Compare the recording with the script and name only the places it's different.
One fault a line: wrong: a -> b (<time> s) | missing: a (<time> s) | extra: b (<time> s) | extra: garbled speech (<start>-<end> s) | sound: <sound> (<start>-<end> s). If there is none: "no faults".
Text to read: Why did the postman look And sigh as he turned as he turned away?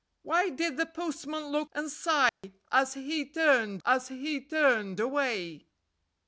sound: dropout (2.3-2.4 s)